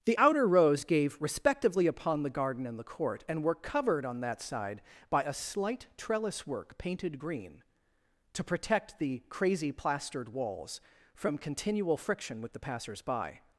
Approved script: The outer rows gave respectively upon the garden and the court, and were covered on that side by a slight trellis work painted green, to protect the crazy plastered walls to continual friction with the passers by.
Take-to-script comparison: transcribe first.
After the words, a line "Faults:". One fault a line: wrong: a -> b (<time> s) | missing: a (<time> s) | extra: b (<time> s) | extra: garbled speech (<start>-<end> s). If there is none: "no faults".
The outer rows gave respectively upon the garden and the court, and were covered on that side by a slight trellis work painted green, to protect the crazy plastered walls from continual friction with the passers by.
Faults:
wrong: to -> from (11.1 s)